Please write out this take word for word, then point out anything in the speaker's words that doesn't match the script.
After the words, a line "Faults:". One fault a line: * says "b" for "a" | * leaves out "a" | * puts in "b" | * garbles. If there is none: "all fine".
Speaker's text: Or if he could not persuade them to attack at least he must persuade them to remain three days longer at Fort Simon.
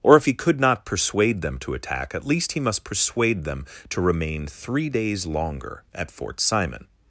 Or if he could not persuade them to attack at least he must persuade them to remain three days longer at Fort Simon.
Faults:
all fine